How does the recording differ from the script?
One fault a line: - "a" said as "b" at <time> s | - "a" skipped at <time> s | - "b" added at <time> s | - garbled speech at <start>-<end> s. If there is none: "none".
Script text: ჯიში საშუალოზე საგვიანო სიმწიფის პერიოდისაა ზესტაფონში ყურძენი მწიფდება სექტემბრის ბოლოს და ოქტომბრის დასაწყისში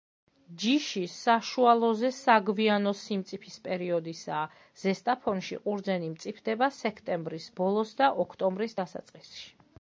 none